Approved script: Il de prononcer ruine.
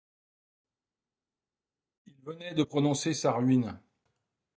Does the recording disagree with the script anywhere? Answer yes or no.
yes